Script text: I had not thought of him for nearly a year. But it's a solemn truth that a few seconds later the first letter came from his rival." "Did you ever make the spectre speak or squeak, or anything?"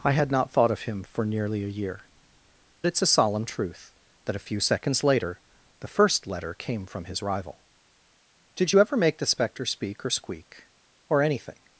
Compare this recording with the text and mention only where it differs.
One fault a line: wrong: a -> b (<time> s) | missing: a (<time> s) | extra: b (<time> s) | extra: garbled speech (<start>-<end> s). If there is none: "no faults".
missing: But (2.0 s)